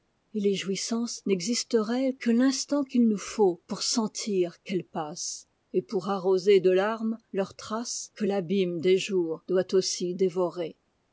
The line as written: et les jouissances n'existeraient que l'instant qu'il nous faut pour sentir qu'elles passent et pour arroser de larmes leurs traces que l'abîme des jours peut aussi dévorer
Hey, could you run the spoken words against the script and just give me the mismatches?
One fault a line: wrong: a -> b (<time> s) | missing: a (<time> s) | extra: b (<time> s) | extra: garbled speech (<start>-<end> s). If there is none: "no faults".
wrong: peut -> doit (9.5 s)